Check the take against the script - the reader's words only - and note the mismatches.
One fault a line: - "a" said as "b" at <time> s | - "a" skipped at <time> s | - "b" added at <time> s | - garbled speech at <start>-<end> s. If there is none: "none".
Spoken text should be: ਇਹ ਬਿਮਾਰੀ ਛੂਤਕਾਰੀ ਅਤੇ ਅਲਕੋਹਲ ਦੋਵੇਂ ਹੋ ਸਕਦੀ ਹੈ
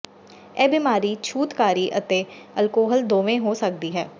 none